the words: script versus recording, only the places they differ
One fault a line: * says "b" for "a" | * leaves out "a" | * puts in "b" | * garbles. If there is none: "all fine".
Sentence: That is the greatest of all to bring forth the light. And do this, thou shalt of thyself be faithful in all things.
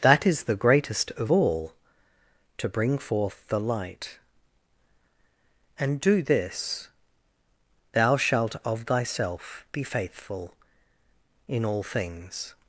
all fine